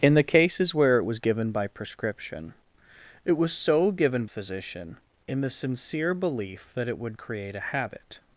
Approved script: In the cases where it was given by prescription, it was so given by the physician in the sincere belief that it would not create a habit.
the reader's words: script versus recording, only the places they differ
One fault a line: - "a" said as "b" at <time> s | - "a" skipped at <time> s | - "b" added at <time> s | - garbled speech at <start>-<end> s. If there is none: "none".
- "by the" skipped at 4.2 s
- "not" skipped at 7.2 s